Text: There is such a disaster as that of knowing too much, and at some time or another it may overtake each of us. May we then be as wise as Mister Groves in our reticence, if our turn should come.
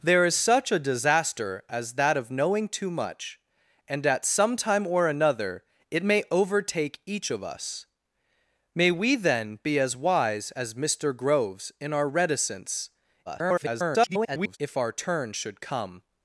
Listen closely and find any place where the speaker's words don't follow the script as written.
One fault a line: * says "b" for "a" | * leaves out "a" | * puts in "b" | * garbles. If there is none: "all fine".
* garbles